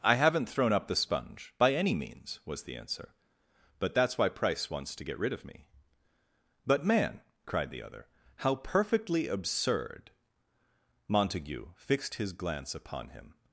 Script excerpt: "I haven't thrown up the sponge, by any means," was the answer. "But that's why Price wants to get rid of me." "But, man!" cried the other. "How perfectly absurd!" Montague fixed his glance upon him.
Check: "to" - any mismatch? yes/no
no